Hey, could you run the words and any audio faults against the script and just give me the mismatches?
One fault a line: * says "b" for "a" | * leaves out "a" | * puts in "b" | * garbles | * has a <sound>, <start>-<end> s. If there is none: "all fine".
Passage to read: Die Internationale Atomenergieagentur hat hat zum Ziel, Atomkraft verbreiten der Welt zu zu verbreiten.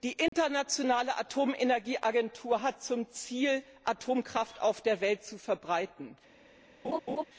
* has a dropout, 0.3-0.3 s
* leaves out "hat"
* says "auf" for "verbreiten"
* leaves out "zu"
* has a laugh, 6.8-7.2 s